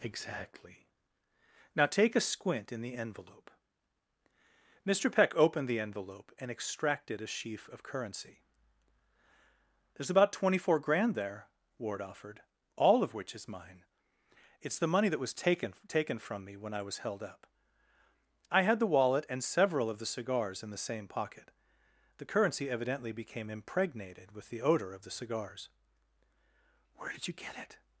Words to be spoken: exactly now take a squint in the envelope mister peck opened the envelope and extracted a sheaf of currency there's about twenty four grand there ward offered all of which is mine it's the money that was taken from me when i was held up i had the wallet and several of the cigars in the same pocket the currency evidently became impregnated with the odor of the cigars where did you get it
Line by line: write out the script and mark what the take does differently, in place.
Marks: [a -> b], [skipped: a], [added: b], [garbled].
exactly now take a squint in the envelope mister peck opened the envelope and extracted a sheaf of currency there's about twenty four grand there ward offered all of which is mine it's the money that was taken [added: taken] from me when i was held up i had the wallet and several of the cigars in the same pocket the currency evidently became impregnated with the odor of the cigars where did you get it